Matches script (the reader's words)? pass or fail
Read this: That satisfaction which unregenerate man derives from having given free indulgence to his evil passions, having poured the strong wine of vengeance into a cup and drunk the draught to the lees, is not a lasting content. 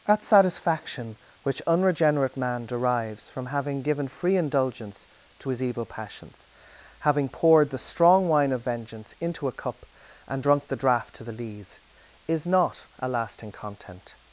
pass